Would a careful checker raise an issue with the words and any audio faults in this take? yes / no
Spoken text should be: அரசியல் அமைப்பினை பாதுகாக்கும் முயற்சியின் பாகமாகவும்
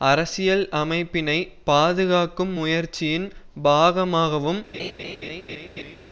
yes